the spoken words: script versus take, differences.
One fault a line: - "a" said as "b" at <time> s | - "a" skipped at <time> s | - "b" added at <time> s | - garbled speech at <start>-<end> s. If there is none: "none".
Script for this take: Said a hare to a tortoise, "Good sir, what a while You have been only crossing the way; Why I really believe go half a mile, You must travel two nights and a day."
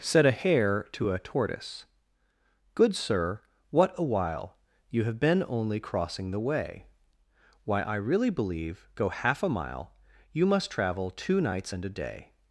none